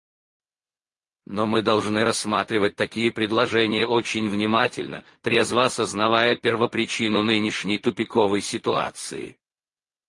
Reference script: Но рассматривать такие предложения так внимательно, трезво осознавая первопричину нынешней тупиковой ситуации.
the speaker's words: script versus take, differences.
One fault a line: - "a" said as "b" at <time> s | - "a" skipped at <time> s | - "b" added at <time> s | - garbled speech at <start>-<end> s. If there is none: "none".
- "мы должны" added at 1.4 s
- "так" said as "очень" at 3.9 s